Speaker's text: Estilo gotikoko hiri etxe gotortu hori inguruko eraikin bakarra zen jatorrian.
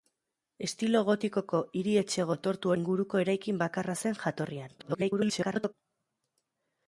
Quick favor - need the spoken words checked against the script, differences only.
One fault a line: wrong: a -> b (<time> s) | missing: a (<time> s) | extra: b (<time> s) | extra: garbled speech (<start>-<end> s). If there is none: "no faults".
missing: hori (2.7 s)
extra: garbled speech (4.8-5.7 s)